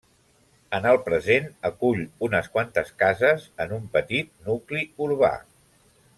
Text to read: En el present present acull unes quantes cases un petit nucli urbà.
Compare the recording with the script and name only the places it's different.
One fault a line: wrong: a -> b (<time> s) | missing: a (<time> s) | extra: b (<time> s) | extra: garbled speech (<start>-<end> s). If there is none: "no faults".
missing: present (1.4 s)
extra: en (3.7 s)